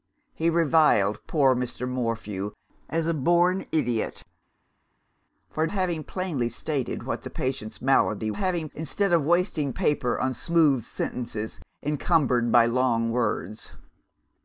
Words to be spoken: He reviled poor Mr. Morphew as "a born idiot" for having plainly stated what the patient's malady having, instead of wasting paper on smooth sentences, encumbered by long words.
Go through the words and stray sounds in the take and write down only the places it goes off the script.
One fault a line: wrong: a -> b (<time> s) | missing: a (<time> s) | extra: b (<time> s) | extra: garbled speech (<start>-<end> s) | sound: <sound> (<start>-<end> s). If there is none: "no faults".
no faults